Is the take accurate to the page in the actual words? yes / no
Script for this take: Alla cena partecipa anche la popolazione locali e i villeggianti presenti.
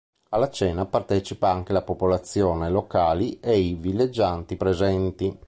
yes